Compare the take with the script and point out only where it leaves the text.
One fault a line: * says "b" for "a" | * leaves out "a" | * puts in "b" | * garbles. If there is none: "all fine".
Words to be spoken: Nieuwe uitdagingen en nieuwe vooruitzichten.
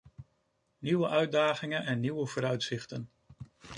all fine